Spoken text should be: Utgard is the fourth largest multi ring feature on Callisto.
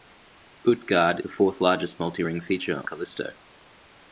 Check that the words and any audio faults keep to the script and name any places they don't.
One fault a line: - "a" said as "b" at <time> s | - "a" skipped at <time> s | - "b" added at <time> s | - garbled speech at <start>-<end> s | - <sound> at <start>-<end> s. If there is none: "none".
- "is" skipped at 1.2 s
- "on" skipped at 2.9 s